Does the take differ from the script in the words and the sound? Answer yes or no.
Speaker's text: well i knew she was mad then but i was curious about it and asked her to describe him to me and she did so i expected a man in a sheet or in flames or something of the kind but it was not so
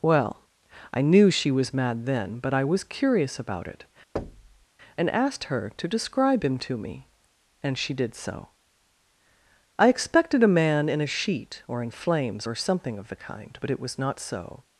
yes